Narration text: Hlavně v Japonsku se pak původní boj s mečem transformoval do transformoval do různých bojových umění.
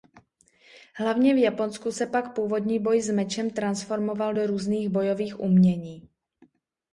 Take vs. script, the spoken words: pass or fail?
fail